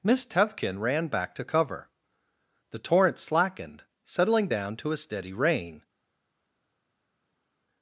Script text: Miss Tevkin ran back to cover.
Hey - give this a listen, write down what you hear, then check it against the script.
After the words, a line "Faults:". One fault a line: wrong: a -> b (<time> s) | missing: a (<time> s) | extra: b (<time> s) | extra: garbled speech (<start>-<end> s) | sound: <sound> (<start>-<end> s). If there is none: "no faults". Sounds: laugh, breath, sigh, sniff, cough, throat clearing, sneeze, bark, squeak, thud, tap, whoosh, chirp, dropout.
Miss Tevkin ran back to cover. The torrent slackened, settling down to a steady rain
Faults:
extra: The torrent slackened settling down to a steady rain (2.7 s)